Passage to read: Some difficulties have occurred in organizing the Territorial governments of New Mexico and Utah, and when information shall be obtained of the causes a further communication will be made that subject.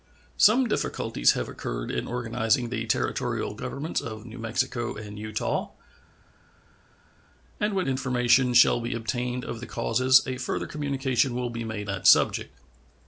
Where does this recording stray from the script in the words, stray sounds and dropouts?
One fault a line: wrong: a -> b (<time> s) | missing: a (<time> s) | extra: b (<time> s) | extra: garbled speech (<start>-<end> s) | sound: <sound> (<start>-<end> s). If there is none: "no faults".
no faults